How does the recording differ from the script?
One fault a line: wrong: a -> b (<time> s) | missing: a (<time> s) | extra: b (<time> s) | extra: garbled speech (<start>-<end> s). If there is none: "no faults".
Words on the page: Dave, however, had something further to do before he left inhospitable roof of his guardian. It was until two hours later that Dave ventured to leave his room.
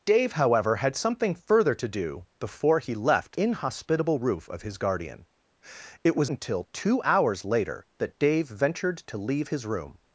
no faults